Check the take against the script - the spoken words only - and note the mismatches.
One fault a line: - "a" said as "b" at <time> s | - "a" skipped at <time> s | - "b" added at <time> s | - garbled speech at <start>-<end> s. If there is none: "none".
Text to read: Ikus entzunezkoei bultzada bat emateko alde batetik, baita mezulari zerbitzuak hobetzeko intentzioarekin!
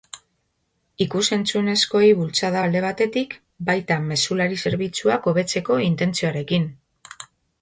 - "bat emateko" skipped at 2.6 s